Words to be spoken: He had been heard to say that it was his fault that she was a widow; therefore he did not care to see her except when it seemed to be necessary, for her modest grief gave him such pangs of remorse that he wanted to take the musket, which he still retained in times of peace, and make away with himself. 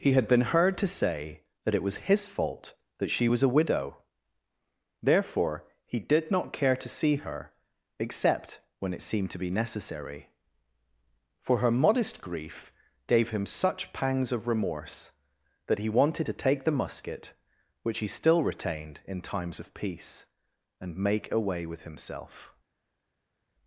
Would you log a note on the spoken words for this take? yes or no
no